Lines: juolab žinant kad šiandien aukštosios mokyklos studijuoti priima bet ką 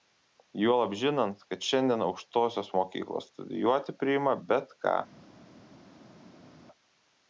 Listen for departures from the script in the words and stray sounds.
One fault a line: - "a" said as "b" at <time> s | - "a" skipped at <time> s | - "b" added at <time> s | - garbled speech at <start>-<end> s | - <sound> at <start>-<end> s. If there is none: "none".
none